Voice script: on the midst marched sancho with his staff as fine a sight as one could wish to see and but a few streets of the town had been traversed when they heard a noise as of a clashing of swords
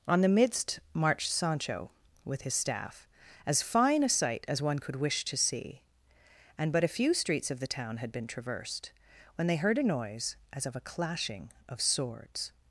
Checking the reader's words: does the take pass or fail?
pass